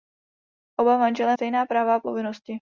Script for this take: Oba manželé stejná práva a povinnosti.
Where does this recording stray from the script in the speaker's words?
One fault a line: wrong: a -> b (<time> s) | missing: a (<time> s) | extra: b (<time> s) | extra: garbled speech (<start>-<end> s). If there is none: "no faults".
no faults